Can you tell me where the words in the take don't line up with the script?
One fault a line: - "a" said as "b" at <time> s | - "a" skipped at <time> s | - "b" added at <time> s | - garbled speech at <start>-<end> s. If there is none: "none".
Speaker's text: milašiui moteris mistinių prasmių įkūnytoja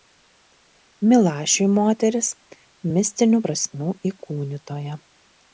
none